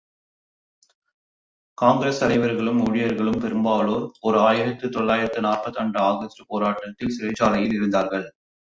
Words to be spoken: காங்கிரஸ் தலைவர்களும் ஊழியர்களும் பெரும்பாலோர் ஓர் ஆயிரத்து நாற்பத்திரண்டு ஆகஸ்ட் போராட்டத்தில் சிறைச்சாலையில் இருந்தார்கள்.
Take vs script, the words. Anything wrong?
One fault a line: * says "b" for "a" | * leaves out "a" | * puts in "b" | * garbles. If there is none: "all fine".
* puts in "தொள்ளாயிரத்து"